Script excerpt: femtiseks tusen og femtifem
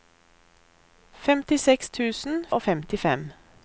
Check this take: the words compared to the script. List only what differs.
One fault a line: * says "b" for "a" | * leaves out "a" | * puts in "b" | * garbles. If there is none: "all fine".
all fine